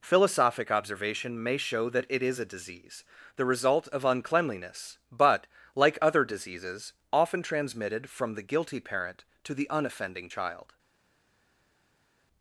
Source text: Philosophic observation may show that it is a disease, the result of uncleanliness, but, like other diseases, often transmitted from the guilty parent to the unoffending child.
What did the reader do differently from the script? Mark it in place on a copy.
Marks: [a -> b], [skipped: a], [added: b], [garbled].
Philosophic observation may show that it is a disease, the result of uncleanliness, but, like other diseases, often transmitted from the guilty parent to the unoffending child.